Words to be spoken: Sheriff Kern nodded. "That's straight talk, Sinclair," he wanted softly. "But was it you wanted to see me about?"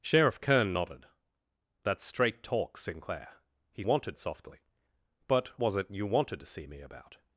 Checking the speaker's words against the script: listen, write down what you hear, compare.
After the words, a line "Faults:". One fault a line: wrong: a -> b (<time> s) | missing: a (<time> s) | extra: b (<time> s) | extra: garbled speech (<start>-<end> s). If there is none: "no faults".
Sheriff Kern nodded. "That's straight talk, Sinclair," he wanted softly. "But was it you wanted to see me about?"
Faults:
no faults